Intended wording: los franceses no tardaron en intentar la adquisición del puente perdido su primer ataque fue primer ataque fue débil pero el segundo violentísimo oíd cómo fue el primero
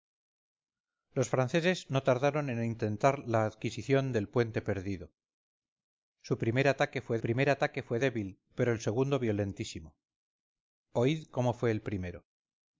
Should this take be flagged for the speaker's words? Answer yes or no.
no